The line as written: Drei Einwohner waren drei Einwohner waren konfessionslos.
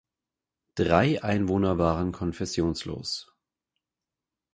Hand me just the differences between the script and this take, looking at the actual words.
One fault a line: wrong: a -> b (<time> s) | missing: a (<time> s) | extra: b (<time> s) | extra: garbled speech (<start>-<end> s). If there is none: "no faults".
missing: drei Einwohner waren (2.1 s)